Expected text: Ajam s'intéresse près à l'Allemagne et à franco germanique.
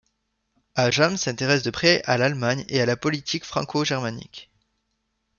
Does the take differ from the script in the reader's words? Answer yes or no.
yes